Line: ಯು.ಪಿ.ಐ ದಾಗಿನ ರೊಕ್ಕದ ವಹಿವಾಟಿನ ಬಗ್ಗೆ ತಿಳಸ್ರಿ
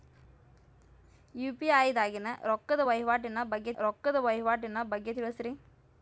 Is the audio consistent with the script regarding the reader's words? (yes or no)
no